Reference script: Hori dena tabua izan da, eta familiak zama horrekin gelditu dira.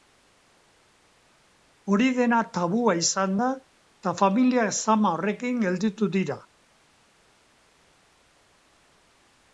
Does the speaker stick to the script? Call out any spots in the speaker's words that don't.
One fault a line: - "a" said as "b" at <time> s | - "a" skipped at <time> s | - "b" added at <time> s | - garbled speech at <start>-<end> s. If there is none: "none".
none